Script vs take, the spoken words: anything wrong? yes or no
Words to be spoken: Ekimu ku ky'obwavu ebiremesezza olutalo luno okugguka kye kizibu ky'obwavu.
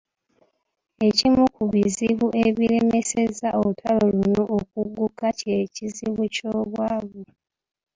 yes